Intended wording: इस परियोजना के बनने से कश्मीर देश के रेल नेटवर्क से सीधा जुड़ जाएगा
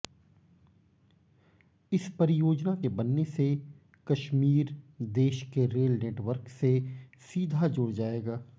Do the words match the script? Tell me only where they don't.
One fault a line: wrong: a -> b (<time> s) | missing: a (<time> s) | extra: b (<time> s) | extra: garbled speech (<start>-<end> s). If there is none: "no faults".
no faults